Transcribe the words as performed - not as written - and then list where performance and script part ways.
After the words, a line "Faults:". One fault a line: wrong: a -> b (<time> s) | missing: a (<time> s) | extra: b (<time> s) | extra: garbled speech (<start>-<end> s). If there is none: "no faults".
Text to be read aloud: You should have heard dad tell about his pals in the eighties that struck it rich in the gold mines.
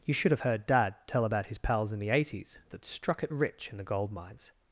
You should have heard dad tell about his pals in the eighties that struck it rich in the gold mines.
Faults:
no faults